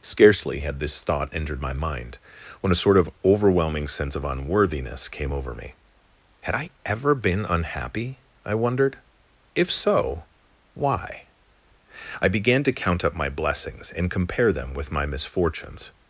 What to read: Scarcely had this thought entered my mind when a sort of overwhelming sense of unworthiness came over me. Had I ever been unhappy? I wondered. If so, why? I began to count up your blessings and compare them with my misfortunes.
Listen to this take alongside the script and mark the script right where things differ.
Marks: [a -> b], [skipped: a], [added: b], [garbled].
Scarcely had this thought entered my mind when a sort of overwhelming sense of unworthiness came over me. Had I ever been unhappy? I wondered. If so, why? I began to count up [your -> my] blessings and compare them with my misfortunes.